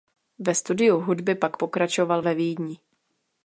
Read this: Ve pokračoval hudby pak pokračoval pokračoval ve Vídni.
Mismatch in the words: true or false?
true